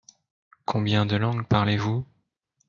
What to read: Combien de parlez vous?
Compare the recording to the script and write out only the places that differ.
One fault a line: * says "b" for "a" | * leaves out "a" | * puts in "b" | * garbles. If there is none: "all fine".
* puts in "langues"